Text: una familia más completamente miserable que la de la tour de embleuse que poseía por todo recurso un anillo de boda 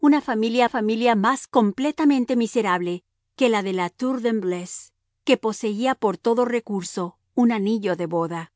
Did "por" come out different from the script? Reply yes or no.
no